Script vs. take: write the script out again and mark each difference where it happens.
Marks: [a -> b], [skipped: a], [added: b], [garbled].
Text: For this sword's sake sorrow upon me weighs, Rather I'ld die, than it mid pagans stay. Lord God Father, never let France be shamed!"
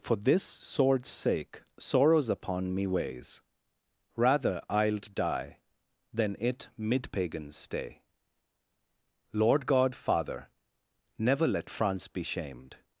For this sword's sake [sorrow -> sorrows] upon me weighs, Rather I'ld die, than it mid pagans stay. Lord God Father, never let France be shamed!"